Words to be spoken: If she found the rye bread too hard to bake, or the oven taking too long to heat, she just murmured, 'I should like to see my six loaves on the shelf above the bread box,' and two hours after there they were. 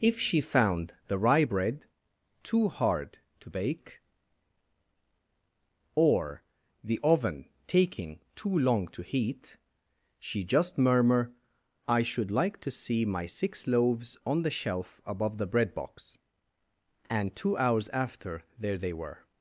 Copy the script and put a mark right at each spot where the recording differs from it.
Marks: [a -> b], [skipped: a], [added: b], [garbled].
If she found the rye bread too hard to bake, or the oven taking too long to heat, she just [murmured, -> murmur] 'I should like to see my six loaves on the shelf above the bread box,' and two hours after there they were.